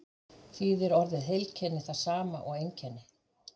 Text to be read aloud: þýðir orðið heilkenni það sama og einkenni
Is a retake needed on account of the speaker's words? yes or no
no